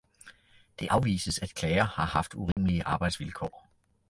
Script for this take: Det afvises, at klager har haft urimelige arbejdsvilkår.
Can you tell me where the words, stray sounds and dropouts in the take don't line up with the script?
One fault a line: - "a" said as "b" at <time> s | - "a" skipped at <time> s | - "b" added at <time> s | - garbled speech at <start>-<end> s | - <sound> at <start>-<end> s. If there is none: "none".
- dropout at 2.5-2.6 s